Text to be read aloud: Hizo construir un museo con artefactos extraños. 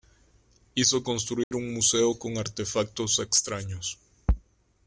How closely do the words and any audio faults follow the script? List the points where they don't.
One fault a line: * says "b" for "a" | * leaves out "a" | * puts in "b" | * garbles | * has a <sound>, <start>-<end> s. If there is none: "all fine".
* has a dropout, 1.4-1.5 s